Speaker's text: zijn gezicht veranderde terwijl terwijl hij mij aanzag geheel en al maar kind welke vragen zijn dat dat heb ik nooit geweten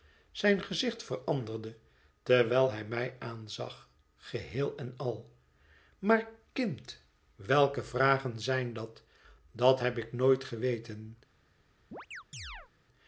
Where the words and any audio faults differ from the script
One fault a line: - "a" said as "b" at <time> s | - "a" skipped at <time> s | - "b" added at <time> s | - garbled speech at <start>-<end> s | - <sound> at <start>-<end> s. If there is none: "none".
- "terwijl" skipped at 2.7 s
- chirp at 11.9-12.7 s